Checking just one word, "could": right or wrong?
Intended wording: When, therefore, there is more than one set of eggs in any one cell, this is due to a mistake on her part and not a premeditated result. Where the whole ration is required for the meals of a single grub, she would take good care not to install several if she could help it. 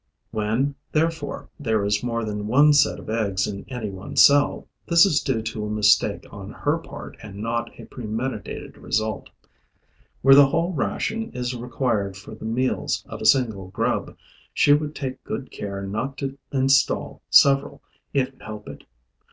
wrong